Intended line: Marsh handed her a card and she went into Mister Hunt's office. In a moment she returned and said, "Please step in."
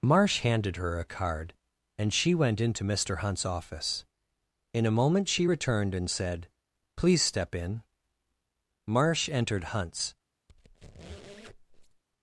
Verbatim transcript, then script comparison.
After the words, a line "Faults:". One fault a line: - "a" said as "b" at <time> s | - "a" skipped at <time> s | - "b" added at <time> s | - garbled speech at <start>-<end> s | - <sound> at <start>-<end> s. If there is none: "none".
Marsh handed her a card and she went into Mister Hunt's office. In a moment she returned and said, "Please step in." Marsh entered Hunt's
Faults:
- "Marsh entered Hunt's" added at 8.9 s
- squeak at 10.5-12.0 s